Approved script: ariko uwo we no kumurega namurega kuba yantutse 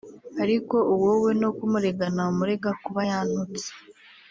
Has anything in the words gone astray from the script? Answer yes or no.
no